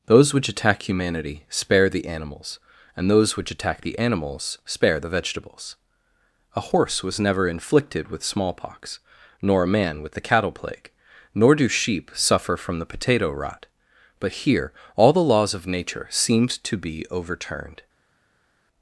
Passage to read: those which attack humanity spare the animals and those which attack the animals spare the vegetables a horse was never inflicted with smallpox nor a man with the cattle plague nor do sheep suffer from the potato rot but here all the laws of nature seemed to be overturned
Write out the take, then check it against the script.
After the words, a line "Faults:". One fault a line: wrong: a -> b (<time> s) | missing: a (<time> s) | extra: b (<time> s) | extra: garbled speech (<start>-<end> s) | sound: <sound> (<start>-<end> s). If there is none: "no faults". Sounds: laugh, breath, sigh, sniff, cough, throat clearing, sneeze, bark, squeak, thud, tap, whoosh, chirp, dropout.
those which attack humanity spare the animals and those which attack the animals spare the vegetables a horse was never inflicted with smallpox nor a man with the cattle plague nor do sheep suffer from the potato rot but here all the laws of nature seemed to be overturned
Faults:
no faults